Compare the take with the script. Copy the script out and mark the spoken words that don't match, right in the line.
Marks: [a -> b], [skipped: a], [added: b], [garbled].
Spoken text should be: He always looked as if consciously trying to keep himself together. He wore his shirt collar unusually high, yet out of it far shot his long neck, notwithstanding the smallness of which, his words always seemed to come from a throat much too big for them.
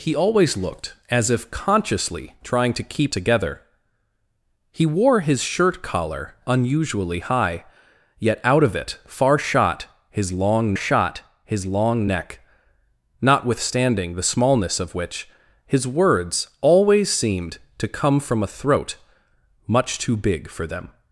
He always looked as if consciously trying to keep [skipped: himself] together. He wore his shirt collar unusually high, yet out of it far shot his long [added: shot his long] neck, notwithstanding the smallness of which, his words always seemed to come from a throat much too big for them.